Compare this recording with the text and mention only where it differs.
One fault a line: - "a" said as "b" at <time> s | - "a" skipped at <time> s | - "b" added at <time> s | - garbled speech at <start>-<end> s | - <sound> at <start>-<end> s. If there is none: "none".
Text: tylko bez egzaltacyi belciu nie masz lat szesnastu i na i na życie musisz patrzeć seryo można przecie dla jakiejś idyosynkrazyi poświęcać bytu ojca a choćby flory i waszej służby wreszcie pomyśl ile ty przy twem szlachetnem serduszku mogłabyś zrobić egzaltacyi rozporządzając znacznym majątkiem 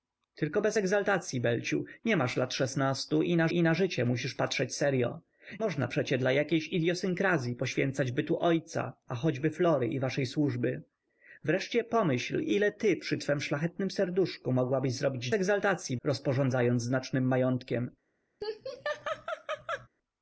- laugh at 18.4-19.9 s